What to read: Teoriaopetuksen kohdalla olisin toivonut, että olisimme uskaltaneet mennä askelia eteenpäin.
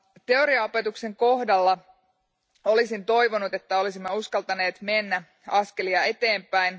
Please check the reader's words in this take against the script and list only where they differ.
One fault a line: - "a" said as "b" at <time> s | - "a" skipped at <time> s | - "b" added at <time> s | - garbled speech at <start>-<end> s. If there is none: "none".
none